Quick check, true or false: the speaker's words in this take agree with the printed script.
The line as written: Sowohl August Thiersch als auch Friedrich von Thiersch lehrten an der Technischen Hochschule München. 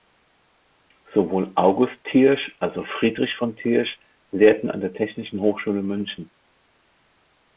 true